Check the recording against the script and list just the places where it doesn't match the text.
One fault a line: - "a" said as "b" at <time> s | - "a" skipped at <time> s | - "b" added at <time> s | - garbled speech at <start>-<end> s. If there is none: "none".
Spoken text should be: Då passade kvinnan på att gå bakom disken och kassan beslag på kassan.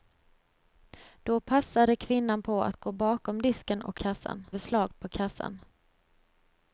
none